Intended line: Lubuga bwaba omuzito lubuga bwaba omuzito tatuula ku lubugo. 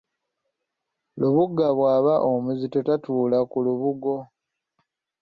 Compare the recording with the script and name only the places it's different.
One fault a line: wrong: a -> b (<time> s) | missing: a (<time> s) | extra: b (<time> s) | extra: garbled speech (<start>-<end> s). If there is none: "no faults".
missing: lubuga bwaba omuzito (2.8 s)